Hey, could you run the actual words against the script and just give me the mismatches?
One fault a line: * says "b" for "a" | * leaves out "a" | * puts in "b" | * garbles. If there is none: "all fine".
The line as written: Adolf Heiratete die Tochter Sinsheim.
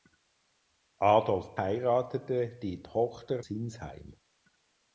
all fine